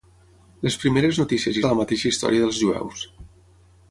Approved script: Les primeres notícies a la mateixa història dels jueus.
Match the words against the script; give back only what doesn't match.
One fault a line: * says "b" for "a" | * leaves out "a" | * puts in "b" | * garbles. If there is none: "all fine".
all fine